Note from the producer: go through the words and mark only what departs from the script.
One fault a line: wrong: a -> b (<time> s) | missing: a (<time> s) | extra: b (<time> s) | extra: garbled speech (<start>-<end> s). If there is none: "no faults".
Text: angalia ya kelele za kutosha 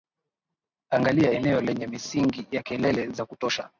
extra: eneo lenye misingi (1.3 s)